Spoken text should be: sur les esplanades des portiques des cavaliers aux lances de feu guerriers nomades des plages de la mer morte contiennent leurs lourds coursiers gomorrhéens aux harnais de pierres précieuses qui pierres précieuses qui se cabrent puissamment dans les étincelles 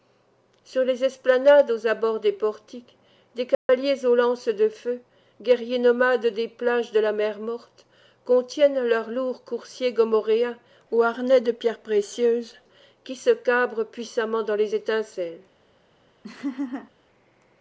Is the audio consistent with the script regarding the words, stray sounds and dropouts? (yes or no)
no